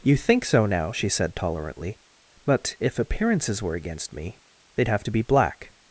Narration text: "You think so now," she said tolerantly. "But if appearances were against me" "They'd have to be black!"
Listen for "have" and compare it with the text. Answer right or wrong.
right